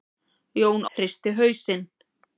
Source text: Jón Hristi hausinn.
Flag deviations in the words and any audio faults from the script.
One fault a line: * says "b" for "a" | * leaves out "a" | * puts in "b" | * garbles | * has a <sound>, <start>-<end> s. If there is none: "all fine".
all fine